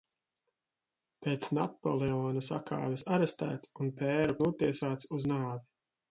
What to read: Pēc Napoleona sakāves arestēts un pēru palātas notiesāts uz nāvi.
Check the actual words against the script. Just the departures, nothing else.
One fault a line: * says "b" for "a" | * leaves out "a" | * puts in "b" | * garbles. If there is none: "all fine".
* leaves out "palātas"